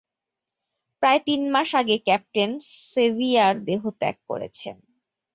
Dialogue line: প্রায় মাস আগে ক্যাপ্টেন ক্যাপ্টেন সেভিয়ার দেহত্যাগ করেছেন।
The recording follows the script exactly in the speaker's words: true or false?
false